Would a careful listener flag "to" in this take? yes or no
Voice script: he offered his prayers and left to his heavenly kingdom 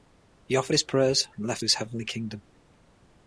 yes